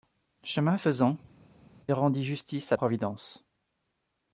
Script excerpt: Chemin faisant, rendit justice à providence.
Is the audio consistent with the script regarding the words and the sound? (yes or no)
yes